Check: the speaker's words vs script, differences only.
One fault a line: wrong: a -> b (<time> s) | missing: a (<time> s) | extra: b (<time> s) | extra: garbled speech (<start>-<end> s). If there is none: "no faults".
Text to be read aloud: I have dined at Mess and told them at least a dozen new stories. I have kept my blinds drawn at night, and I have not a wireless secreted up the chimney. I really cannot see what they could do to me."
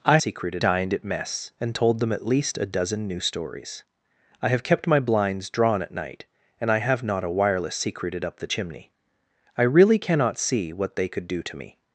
wrong: have -> secreted (0.2 s)